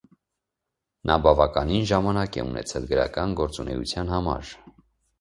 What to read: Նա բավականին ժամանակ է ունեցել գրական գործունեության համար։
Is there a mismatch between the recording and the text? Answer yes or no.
no